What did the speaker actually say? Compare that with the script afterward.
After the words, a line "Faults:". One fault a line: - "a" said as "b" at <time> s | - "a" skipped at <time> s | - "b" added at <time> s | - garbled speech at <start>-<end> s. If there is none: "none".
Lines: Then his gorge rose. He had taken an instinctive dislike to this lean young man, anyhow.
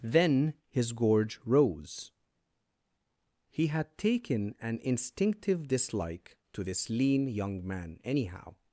Then his gorge rose. He had taken an instinctive dislike to this lean young man, anyhow.
Faults:
none